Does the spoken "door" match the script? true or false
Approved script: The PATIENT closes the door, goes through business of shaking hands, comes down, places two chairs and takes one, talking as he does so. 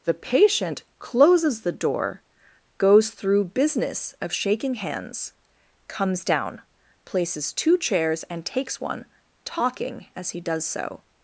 true